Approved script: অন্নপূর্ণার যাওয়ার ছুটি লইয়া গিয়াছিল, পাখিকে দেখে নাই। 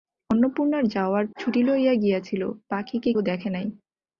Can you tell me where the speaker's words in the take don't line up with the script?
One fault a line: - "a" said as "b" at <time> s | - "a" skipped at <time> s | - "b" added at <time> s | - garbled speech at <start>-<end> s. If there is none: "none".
none